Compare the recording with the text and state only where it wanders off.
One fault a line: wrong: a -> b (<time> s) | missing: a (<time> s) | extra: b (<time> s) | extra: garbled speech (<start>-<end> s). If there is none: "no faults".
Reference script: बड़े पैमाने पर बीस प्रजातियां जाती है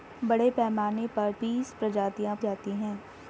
no faults